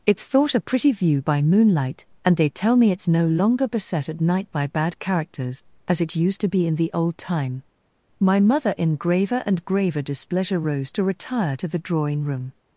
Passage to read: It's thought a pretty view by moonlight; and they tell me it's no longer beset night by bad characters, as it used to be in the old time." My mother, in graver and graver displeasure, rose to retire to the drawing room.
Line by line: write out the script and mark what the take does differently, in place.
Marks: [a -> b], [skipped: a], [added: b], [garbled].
It's thought a pretty view by moonlight; and they tell me it's no longer beset [added: at] night by bad characters, as it used to be in the old time." My mother, in graver and graver displeasure, rose to retire to the drawing room.